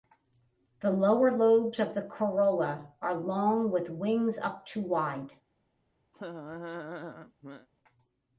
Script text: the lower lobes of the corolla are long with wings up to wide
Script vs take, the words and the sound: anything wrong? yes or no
yes